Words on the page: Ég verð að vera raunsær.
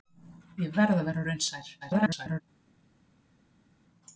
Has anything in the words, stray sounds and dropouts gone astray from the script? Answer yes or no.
yes